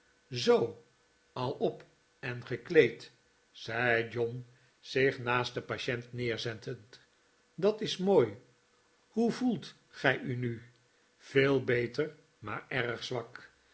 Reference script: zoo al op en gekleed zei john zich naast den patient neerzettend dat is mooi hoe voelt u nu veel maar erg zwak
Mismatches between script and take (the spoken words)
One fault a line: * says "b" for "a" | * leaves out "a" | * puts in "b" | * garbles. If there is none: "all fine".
* puts in "gij"
* puts in "beter"